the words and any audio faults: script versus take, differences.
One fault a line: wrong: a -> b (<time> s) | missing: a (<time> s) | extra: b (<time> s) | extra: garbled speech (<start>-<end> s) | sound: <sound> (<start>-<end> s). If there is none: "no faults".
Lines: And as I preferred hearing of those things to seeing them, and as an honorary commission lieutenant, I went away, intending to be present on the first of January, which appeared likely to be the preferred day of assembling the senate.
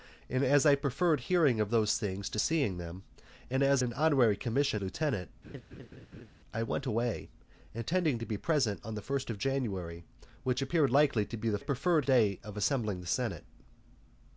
sound: laugh (5.4-6.3 s)